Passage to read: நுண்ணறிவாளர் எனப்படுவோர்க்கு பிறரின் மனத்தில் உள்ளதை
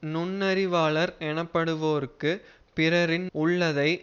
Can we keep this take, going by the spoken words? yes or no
no